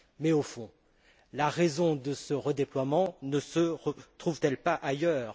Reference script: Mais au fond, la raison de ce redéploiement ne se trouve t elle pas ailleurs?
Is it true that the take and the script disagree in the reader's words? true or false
false